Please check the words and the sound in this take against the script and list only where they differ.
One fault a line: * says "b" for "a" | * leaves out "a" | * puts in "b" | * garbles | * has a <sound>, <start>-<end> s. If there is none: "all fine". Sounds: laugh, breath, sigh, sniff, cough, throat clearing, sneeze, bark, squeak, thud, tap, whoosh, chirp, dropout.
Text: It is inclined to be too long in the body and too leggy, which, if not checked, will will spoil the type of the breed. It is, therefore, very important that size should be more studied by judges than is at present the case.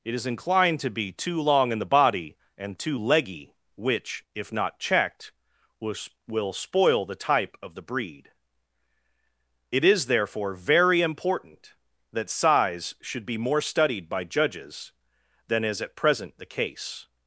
all fine